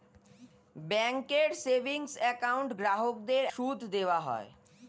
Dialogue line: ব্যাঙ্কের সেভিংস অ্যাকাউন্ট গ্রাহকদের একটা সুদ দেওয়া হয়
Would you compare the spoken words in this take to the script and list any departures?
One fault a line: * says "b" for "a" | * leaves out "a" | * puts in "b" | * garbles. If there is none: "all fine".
* leaves out "একটা"